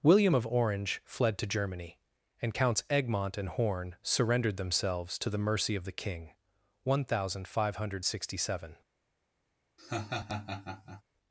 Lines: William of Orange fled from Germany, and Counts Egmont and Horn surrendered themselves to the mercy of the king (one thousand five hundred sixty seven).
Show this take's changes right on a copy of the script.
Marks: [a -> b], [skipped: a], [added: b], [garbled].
William of Orange fled [from -> to] Germany, and Counts Egmont and Horn surrendered themselves to the mercy of the king (one thousand five hundred sixty seven).